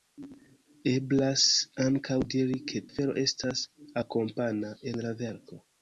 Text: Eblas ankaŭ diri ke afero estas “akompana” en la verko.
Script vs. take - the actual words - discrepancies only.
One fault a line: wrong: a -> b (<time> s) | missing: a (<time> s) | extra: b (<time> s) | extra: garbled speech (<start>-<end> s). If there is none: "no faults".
no faults